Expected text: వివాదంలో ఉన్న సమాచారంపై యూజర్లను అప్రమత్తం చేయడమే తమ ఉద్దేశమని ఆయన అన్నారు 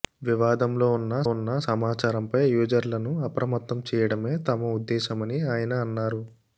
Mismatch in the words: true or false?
true